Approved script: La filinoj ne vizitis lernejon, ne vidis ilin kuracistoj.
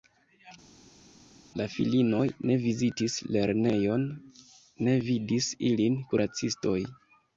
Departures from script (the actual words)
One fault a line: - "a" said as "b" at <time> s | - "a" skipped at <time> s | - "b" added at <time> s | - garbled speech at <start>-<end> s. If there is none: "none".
none